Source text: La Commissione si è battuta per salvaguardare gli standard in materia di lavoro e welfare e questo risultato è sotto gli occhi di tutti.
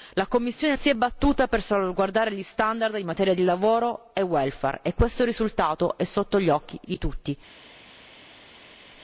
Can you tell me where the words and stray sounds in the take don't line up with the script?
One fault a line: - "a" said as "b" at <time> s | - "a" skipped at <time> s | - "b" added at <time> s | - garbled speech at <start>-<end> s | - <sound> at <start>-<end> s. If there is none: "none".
none